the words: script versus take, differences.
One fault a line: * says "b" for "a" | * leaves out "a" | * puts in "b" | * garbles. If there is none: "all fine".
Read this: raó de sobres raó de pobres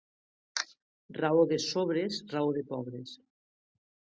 all fine